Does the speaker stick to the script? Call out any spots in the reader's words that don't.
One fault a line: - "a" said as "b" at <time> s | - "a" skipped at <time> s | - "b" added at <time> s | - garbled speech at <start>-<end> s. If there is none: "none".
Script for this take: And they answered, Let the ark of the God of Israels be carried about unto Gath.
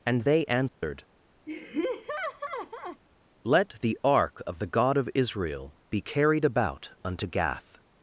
- "Israels" said as "Israel" at 5.1 s